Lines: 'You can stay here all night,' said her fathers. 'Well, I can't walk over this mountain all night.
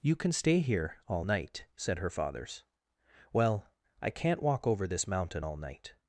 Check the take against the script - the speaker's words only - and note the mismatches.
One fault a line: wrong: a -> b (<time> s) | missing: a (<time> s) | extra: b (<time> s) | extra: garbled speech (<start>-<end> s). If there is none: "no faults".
no faults